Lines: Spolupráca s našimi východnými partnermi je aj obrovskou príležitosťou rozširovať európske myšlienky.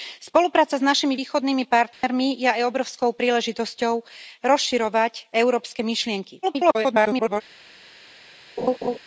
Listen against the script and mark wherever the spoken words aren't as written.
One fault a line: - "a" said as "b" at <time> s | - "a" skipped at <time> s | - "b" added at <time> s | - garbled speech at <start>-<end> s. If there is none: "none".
- garbled speech at 6.4-7.4 s